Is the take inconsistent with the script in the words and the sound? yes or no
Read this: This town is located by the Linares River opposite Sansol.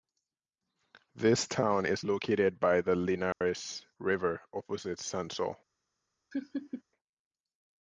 yes